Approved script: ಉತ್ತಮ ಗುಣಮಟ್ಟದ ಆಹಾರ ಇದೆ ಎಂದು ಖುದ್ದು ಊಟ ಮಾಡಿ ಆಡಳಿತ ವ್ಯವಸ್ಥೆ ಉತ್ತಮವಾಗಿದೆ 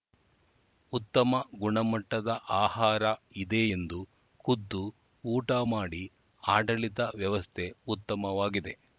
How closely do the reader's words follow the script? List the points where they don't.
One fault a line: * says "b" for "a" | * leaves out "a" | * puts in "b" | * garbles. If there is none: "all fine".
all fine